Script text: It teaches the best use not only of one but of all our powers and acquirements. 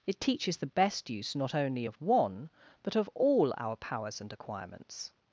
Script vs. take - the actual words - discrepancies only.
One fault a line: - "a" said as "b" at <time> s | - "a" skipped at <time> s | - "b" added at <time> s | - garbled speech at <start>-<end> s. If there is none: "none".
none